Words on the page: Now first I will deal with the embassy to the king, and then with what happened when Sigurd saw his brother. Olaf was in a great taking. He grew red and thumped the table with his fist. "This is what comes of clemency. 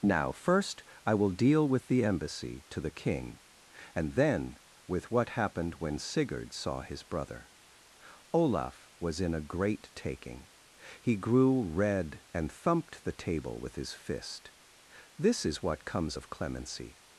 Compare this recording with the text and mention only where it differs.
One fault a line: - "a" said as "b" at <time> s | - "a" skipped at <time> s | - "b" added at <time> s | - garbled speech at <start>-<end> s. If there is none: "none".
none